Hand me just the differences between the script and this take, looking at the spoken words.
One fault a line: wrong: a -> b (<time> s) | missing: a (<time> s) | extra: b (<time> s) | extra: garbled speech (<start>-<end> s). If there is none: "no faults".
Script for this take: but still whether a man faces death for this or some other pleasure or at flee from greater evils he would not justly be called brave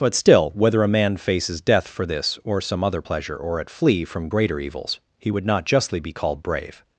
no faults